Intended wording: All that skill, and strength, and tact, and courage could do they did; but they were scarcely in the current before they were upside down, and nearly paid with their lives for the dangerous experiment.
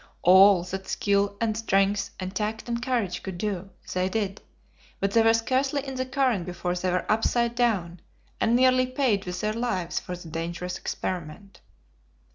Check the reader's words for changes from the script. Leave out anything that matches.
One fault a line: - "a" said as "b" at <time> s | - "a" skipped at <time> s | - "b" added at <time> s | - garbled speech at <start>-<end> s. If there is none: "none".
none